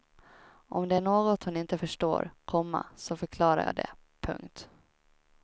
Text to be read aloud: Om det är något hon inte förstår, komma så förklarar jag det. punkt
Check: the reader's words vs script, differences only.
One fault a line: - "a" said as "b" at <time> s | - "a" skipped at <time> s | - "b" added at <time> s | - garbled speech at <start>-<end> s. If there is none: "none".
none